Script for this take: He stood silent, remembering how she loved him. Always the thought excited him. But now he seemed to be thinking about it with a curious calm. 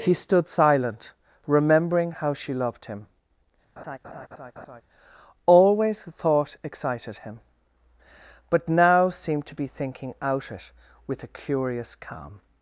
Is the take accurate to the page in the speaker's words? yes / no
no